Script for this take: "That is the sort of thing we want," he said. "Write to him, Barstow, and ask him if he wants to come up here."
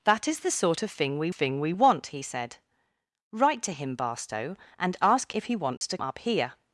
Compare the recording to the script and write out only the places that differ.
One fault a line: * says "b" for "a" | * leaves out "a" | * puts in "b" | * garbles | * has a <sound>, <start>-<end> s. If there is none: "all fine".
* puts in "thing we"
* leaves out "him"
* has a dropout, 5.8-5.8 s
* leaves out "come"